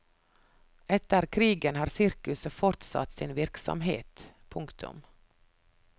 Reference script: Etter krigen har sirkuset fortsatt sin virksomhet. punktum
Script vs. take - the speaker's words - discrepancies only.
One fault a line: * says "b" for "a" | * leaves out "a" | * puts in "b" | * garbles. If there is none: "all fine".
all fine